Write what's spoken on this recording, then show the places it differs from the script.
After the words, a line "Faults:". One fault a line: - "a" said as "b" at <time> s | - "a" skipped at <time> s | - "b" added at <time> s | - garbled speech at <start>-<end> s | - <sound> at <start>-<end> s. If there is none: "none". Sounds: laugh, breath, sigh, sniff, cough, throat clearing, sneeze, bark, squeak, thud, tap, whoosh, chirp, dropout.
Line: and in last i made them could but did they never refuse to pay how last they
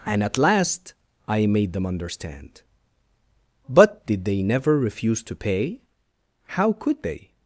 and at last i made them understand but did they never refuse to pay how could they
Faults:
- "in" said as "at" at 0.2 s
- "could" said as "understand" at 1.9 s
- "last" said as "could" at 6.7 s